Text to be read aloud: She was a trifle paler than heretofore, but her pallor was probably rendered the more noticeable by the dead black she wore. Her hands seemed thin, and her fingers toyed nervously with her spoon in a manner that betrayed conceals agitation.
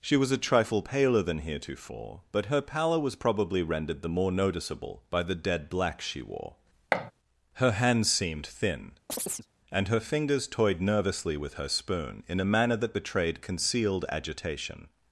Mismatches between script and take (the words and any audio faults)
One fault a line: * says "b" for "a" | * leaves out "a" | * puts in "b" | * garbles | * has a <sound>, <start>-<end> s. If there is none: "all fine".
* has a thud, 6.9-7.1 s
* has a chirp, 9.1-9.5 s
* says "concealed" for "conceals"